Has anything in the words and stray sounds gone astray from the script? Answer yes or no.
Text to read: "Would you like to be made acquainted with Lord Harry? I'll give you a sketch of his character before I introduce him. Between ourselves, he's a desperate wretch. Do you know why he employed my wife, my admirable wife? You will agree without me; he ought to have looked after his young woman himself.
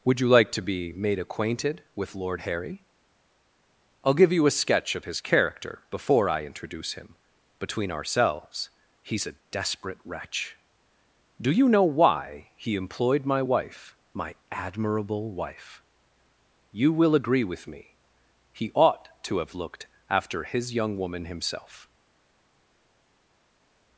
yes